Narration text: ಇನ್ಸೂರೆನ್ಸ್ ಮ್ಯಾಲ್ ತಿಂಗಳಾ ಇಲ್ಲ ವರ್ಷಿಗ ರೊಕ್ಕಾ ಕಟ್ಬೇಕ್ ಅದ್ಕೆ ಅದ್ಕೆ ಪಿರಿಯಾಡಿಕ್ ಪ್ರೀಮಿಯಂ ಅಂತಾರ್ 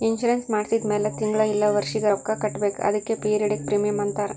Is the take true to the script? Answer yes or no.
no